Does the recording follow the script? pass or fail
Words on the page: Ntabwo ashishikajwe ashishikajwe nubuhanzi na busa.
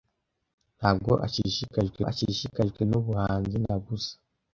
pass